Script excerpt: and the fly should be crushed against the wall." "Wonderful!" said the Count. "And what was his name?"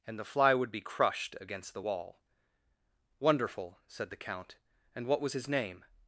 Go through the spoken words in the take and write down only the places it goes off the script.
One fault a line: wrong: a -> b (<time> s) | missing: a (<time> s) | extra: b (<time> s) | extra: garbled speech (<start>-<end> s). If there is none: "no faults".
wrong: should -> would (0.5 s)